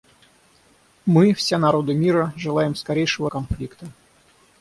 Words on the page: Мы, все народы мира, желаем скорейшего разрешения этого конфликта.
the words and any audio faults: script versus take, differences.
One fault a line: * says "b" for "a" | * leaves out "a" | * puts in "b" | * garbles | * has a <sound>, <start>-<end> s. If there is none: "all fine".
* leaves out "разрешения этого"